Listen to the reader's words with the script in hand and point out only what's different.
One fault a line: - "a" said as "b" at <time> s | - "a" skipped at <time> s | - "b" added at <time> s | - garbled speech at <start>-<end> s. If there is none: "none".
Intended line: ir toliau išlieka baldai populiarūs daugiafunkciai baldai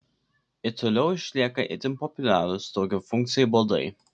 - "baldai" said as "itin" at 1.8 s